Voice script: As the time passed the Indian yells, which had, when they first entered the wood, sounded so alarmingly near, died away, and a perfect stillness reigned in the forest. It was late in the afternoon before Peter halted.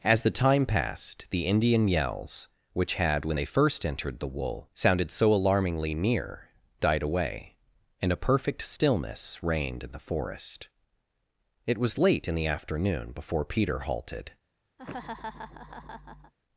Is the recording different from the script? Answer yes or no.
yes